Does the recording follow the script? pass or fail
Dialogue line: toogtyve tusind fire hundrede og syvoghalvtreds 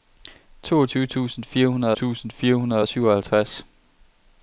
fail